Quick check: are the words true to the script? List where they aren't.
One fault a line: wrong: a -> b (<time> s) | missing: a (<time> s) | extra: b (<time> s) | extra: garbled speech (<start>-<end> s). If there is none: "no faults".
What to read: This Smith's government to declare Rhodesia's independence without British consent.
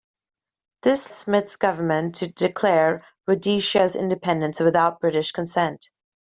no faults